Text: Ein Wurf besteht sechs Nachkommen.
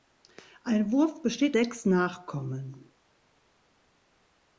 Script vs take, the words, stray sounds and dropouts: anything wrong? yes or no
no